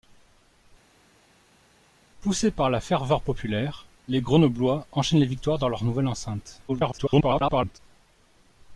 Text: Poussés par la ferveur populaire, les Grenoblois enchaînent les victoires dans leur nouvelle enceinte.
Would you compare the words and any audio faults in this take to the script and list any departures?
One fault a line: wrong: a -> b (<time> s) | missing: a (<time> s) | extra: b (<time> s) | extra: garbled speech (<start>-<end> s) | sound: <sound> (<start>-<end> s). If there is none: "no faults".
extra: garbled speech (6.7-7.8 s)